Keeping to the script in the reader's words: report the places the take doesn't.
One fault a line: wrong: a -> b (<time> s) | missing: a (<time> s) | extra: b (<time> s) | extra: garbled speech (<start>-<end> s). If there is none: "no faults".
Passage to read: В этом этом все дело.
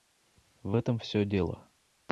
missing: этом (1.0 s)